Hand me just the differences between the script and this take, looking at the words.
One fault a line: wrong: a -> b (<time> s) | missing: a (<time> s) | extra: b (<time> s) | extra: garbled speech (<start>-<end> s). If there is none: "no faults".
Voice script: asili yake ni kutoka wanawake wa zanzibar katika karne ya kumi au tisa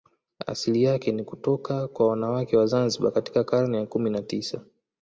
extra: kwa (1.9 s)
wrong: au -> na (4.1 s)